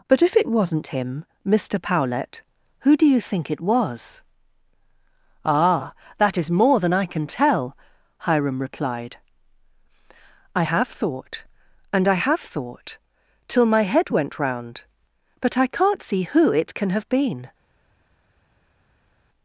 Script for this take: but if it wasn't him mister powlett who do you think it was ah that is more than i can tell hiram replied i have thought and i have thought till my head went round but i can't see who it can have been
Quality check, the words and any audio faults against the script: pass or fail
pass